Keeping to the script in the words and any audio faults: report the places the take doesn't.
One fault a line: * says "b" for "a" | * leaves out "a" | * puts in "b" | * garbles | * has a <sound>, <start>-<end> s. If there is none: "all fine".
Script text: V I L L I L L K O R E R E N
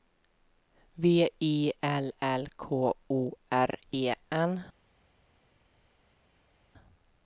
* leaves out "I L L"
* leaves out "R E"